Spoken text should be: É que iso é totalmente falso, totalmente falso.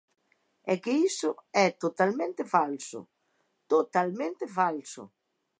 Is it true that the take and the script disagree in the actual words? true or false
false